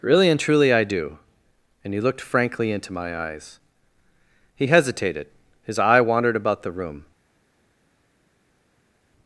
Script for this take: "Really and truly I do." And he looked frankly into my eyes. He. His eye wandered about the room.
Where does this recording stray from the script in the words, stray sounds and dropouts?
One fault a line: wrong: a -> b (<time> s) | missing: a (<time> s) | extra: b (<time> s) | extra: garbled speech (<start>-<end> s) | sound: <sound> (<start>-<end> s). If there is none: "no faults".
extra: hesitated (4.7 s)